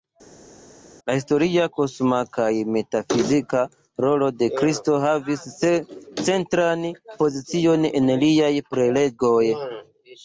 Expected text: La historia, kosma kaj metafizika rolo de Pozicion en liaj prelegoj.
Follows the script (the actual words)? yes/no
no